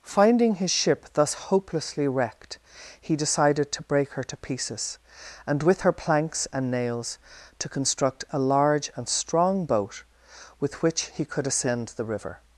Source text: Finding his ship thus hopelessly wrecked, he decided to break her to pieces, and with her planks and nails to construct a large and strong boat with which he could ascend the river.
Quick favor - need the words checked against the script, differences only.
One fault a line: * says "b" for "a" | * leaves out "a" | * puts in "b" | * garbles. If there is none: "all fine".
all fine